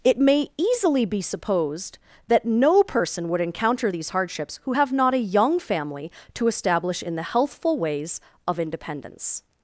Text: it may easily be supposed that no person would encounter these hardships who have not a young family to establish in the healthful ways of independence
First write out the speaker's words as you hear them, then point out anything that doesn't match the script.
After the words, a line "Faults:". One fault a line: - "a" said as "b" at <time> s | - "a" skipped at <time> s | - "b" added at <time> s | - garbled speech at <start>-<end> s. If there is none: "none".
it may easily be supposed that no person would encounter these hardships who have not a young family to establish in the healthful ways of independence
Faults:
none